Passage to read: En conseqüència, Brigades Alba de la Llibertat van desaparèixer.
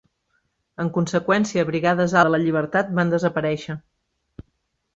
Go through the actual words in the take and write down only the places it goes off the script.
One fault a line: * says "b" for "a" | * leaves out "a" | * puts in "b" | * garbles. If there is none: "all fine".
* leaves out "Alba"